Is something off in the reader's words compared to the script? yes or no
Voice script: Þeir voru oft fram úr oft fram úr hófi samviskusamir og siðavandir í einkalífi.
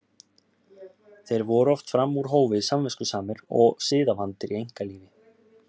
yes